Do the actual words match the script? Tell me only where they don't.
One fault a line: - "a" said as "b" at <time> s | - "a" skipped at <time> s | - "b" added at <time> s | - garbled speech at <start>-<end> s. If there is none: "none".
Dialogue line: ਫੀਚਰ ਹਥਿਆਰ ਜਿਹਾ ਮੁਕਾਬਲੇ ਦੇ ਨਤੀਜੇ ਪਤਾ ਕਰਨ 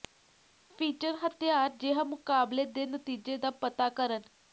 - "ਦਾ" added at 3.4 s